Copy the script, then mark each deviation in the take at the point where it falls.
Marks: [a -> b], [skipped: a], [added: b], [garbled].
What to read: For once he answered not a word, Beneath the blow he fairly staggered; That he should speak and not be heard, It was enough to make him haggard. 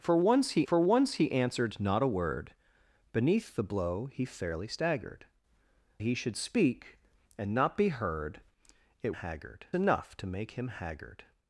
For once he [added: for once he] answered not a word, Beneath the blow he fairly staggered; [skipped: That] he should speak and not be heard, It [was -> haggard] enough to make him haggard.